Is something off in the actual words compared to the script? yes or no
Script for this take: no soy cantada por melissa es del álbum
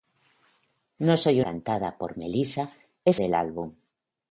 no